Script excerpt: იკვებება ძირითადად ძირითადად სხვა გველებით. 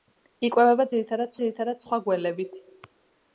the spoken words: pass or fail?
pass